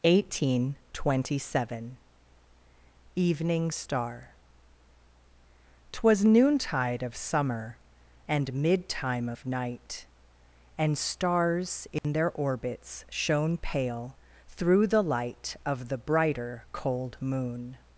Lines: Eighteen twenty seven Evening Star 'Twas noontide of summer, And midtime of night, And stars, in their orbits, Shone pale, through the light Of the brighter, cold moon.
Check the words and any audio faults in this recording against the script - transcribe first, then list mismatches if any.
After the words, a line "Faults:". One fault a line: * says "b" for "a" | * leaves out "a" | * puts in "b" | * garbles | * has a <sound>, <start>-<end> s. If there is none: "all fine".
Eighteen twenty seven Evening Star 'Twas noontide of summer, And midtime of night, And stars, in their orbits, Shone pale, through the light Of the brighter, cold moon.
Faults:
* has a dropout, 12.0-12.0 s